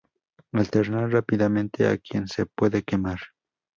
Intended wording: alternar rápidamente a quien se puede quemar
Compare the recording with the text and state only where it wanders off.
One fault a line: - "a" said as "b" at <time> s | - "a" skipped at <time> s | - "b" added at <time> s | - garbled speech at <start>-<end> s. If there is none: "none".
none